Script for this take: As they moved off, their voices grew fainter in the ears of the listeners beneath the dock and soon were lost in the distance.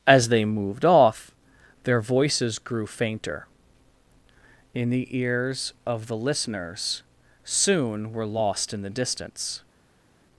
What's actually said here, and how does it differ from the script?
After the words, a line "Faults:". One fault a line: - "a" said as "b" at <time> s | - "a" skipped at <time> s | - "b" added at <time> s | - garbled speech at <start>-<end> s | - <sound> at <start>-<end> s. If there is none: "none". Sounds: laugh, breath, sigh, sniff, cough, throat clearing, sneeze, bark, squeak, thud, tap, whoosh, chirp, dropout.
As they moved off, their voices grew fainter in the ears of the listeners soon were lost in the distance.
Faults:
- "beneath the dock and" skipped at 7.0 s